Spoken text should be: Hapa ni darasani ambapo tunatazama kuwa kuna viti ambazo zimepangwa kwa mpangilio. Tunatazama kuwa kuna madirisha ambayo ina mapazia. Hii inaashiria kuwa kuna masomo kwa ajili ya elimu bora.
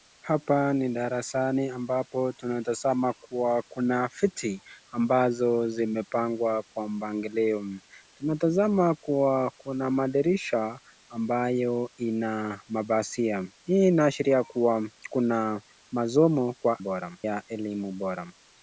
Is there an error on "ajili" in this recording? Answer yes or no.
yes